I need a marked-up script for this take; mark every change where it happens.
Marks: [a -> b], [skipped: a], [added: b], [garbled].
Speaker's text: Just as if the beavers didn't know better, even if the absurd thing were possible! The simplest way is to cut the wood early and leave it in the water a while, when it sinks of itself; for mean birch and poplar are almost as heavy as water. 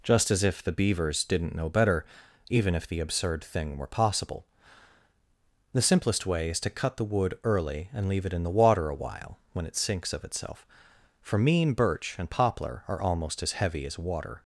Just as if the beavers didn't know better, even if the absurd thing were possible! The simplest way is to cut the wood early and leave it in the water a while, when it sinks of itself; for mean birch and poplar are almost as heavy as water.